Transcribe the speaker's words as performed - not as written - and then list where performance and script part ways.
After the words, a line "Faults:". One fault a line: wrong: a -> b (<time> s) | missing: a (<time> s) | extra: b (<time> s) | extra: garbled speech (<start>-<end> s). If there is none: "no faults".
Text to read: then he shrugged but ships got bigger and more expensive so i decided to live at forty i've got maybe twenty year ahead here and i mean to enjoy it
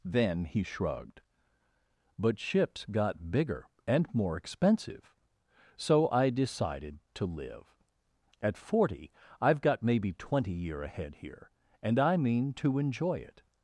then he shrugged but ships got bigger and more expensive so i decided to live at forty i've got maybe twenty year ahead here and i mean to enjoy it
Faults:
no faults